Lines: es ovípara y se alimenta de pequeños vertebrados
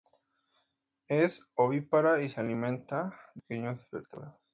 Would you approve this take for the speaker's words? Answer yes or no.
yes